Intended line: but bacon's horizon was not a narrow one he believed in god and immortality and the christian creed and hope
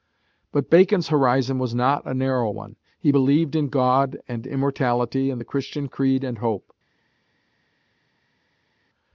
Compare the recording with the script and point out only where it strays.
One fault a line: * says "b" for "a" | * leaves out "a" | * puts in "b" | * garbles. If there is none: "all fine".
all fine